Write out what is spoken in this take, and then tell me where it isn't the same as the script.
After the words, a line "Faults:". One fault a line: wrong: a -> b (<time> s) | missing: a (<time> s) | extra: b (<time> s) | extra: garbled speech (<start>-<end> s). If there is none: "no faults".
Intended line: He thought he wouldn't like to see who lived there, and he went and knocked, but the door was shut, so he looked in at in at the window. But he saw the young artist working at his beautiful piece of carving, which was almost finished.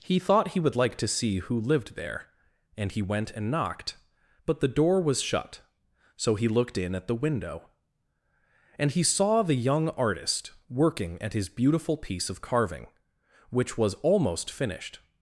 He thought he would like to see who lived there, and he went and knocked, but the door was shut, so he looked in at the window. And he saw the young artist working at his beautiful piece of carving, which was almost finished.
Faults:
wrong: wouldn't -> would (0.6 s)
missing: in at (7.1 s)
wrong: But -> And (8.8 s)